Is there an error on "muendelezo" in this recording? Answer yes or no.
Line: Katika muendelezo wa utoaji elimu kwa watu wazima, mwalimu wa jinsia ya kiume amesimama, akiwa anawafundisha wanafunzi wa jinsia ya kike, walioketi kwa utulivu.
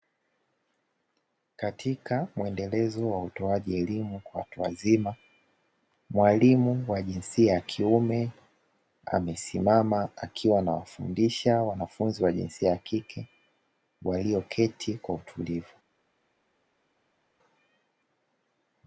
no